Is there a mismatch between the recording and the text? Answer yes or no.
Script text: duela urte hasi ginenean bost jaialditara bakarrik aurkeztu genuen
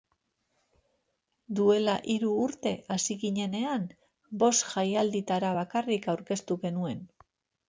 yes